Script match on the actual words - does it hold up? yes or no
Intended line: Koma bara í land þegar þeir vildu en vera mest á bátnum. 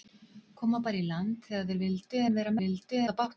no